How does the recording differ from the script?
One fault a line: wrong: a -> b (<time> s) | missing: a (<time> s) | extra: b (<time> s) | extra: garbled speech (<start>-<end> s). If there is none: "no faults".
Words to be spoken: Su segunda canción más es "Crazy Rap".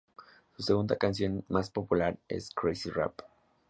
extra: popular (1.7 s)